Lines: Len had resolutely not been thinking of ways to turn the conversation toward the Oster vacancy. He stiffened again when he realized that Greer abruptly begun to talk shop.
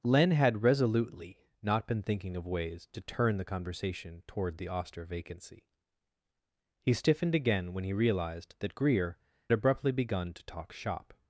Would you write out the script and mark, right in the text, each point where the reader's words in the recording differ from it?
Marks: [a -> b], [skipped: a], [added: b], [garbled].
Len had resolutely not been thinking of ways to turn the conversation toward the Oster vacancy. He stiffened again when he realized that Greer abruptly begun to talk shop.